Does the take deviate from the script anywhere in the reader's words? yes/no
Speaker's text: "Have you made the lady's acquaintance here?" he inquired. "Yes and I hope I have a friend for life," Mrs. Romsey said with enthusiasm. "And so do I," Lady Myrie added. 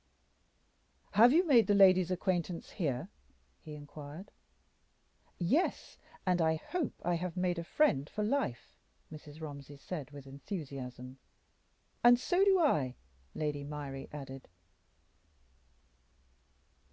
yes